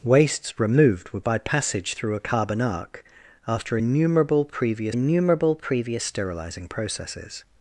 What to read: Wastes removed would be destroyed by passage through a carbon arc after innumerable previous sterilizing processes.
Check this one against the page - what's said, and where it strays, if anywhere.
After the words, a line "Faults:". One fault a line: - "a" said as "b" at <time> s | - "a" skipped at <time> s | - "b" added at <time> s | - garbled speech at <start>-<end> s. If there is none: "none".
Wastes removed would by passage through a carbon arc after innumerable previous innumerable previous sterilizing processes.
Faults:
- "be destroyed" skipped at 1.2 s
- "innumerable previous" added at 4.9 s